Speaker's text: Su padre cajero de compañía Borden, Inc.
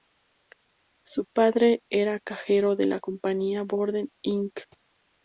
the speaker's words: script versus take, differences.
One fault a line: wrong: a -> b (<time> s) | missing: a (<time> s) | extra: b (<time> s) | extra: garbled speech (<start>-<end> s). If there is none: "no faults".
extra: era (1.9 s)
extra: la (2.8 s)